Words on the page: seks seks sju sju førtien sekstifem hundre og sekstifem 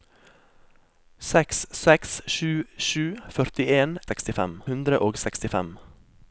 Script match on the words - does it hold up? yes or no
yes